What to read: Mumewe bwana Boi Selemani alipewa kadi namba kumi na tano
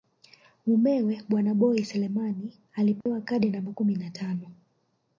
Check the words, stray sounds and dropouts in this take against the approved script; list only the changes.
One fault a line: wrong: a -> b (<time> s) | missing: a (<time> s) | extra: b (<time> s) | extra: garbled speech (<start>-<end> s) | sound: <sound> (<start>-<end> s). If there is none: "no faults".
sound: dropout (3.0-3.1 s)